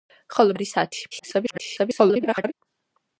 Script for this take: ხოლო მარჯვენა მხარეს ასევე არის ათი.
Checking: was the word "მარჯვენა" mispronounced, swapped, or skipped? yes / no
yes